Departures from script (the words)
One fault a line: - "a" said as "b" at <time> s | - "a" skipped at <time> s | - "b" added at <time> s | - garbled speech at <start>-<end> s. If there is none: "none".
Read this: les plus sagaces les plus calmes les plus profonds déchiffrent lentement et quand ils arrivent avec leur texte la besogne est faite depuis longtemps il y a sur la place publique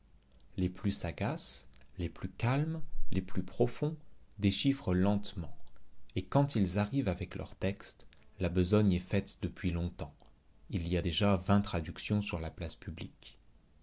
- "déjà vingt traductions" added at 11.0 s